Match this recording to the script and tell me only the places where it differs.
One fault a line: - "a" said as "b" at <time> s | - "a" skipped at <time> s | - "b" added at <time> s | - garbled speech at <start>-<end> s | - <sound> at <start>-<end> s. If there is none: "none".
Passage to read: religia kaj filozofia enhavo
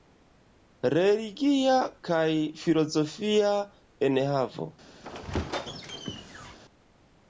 - squeak at 5.0-6.6 s